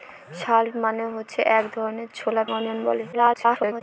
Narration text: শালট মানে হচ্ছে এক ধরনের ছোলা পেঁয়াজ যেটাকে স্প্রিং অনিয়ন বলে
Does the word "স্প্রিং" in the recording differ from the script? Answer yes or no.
yes